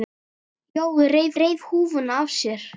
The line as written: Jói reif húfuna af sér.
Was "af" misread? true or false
false